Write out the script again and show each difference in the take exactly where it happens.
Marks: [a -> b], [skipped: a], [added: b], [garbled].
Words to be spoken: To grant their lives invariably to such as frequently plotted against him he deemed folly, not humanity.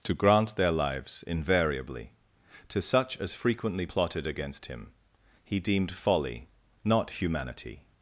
To grant their lives invariably to such as frequently plotted against him he deemed folly, not humanity.